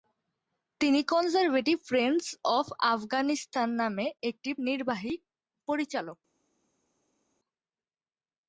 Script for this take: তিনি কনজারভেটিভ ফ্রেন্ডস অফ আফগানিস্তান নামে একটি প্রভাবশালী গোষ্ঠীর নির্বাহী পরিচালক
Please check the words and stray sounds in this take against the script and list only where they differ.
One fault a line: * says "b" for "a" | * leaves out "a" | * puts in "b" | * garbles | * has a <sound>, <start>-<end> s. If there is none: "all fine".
* leaves out "প্রভাবশালী গোষ্ঠীর"